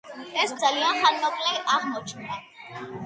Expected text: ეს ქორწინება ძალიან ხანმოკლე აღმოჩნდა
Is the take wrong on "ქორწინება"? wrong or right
wrong